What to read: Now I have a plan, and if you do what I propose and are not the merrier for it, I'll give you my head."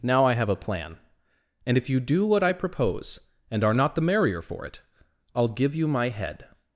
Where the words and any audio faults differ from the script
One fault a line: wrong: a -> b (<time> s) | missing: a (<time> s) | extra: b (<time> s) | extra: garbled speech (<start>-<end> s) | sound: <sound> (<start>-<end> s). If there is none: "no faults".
no faults